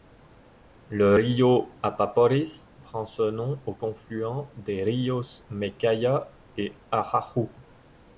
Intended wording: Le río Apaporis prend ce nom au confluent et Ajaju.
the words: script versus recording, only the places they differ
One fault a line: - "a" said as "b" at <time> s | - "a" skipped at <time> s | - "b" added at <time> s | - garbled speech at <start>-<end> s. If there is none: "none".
- "des ríos Mecaya" added at 4.5 s